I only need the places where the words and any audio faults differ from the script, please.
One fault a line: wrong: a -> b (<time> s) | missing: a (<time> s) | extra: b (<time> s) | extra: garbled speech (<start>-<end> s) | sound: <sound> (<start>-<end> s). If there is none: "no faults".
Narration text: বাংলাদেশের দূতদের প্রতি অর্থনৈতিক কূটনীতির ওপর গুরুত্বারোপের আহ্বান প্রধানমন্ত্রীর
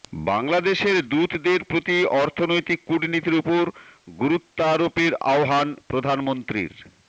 no faults